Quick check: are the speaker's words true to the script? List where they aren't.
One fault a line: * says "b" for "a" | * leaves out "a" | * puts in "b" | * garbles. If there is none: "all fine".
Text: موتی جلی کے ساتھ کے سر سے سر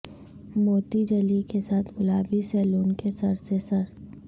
* puts in "گلابی سیلون"